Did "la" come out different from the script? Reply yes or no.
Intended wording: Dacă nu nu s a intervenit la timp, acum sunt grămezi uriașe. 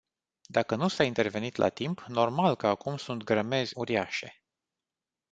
no